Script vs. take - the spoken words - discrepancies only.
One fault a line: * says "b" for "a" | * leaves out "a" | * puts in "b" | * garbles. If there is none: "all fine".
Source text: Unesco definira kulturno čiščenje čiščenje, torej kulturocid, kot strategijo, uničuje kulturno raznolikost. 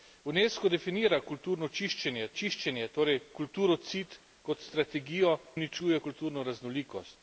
all fine